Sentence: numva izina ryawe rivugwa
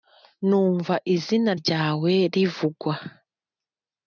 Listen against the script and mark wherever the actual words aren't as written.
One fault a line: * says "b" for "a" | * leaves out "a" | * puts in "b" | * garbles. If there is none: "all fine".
all fine